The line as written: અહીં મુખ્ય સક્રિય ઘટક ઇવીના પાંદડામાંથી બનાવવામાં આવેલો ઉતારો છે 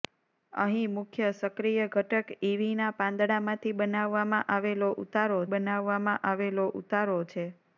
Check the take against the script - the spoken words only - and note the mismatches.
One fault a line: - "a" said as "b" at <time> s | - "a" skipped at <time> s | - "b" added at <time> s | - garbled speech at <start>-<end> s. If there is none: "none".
- "બનાવવામાં આવેલો ઉતારો" added at 5.5 s